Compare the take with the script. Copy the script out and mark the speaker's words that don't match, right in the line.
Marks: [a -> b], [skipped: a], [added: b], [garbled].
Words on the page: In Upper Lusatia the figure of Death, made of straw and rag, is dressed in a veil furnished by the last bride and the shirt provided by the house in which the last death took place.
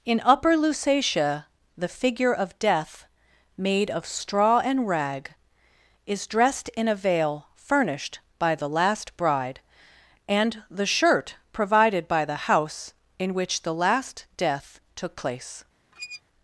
In Upper Lusatia the figure of Death, made of straw and rag, is dressed in a veil furnished by the last bride and the shirt provided by the house in which the last death took place.